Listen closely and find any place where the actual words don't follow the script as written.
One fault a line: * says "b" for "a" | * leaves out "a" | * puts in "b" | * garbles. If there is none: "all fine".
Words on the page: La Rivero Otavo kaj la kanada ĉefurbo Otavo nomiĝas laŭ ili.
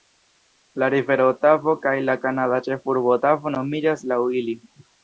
all fine